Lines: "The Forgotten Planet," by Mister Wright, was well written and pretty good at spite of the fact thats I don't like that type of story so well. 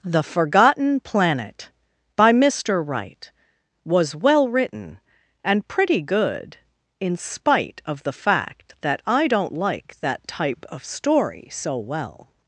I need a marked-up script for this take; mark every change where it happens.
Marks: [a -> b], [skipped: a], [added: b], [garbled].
"The Forgotten Planet," by Mister Wright, was well written and pretty good [at -> in] spite of the fact [thats -> that] I don't like that type of story so well.